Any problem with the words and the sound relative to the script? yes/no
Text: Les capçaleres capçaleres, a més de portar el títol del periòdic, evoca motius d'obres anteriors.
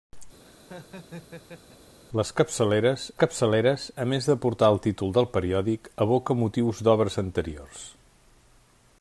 yes